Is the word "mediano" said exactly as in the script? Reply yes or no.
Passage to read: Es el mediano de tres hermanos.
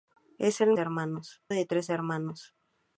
no